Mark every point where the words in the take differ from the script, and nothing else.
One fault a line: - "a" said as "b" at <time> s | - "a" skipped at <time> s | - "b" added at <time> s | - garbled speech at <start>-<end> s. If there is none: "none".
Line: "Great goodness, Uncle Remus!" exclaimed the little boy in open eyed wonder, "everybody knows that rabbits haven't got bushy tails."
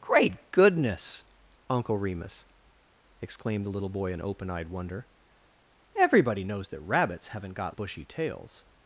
none